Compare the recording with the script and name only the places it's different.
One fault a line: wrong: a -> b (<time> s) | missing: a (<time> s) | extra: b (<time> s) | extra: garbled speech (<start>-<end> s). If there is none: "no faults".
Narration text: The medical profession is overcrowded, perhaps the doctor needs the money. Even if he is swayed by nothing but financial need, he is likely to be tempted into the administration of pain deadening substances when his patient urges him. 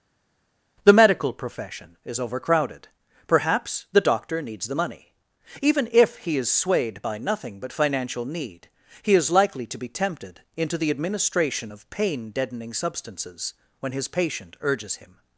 no faults